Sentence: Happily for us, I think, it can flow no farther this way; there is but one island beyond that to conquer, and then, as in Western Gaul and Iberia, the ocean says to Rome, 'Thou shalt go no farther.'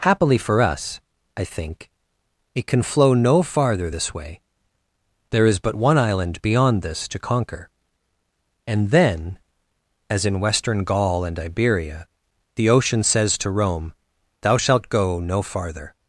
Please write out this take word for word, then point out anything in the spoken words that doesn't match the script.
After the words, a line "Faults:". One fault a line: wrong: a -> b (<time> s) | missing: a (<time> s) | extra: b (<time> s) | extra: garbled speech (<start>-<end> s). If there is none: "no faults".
Happily for us, I think, it can flow no farther this way; there is but one island beyond this to conquer, and then, as in Western Gaul and Iberia, the ocean says to Rome, 'Thou shalt go no farther.'
Faults:
wrong: that -> this (6.8 s)